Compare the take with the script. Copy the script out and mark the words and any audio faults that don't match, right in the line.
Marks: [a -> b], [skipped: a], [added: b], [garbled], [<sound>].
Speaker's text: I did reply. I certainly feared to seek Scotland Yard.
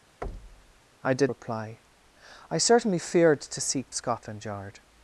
[thud] I did reply. I certainly feared to seek Scotland Yard.